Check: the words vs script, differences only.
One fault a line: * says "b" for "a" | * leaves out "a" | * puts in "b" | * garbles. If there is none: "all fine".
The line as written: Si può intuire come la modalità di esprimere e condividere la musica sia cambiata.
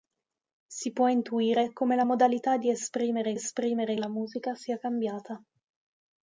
* says "esprimere" for "condividere"